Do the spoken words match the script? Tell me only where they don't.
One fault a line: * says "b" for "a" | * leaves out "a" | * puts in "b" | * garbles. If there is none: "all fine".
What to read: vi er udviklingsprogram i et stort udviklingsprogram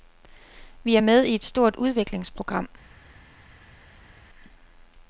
* says "med" for "udviklingsprogram"